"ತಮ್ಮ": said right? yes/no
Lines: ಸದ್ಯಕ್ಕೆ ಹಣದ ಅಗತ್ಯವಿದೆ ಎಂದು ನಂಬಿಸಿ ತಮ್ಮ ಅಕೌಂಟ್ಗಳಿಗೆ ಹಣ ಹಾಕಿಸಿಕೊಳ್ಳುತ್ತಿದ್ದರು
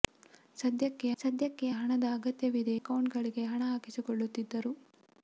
no